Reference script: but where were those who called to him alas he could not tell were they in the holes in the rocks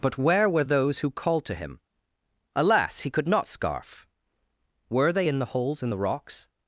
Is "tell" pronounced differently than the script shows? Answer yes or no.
yes